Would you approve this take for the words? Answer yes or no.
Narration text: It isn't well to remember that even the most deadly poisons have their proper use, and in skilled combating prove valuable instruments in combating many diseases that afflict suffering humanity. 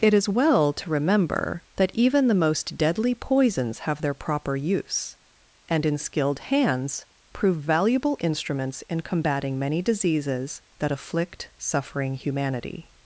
no